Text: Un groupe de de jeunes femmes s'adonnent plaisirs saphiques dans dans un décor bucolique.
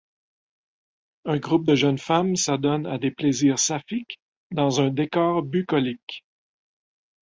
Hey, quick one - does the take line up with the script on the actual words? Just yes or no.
no